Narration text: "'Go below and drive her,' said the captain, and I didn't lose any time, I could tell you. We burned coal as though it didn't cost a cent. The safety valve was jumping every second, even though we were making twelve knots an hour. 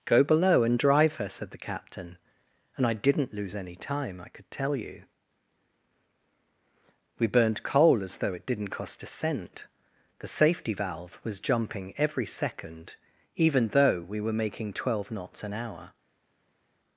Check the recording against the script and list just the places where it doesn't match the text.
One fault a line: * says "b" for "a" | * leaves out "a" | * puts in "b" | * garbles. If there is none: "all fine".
all fine